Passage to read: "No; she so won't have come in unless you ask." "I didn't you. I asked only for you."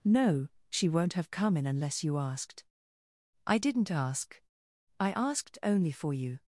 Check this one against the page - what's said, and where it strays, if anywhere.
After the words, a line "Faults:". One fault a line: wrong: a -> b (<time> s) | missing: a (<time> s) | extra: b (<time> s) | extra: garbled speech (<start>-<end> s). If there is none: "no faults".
"No; she won't have come in unless you asked." "I didn't ask. I asked only for you."
Faults:
missing: so (0.9 s)
wrong: ask -> asked (2.2 s)
wrong: you -> ask (3.9 s)